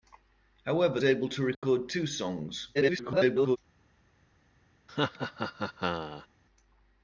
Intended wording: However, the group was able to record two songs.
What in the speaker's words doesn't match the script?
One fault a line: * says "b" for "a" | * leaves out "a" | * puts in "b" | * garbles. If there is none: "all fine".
* leaves out "the group was"
* garbles